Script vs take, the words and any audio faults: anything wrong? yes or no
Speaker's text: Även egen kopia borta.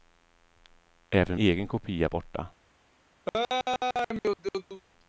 yes